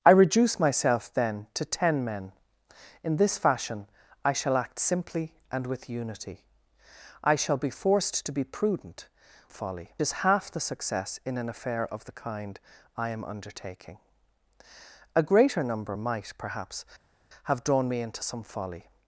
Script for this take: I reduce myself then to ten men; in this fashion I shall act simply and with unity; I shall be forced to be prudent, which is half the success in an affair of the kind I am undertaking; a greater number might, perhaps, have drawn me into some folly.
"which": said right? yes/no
no